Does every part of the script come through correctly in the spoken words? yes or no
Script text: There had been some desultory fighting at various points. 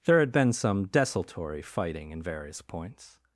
no